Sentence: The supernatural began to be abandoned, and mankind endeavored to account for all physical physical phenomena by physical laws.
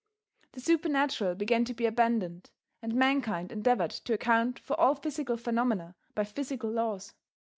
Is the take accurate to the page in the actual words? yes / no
no